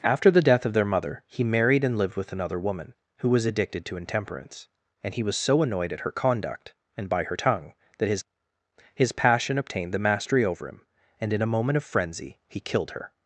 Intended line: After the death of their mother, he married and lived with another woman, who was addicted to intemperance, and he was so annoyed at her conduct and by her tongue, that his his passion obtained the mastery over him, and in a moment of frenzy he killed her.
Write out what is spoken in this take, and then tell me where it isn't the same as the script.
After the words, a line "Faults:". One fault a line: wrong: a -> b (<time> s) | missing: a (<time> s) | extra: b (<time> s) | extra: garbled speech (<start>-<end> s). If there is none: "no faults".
After the death of their mother, he married and lived with another woman, who was addicted to intemperance, and he was so annoyed at her conduct and by her tongue, that his his passion obtained the mastery over him, and in a moment of frenzy he killed her.
Faults:
no faults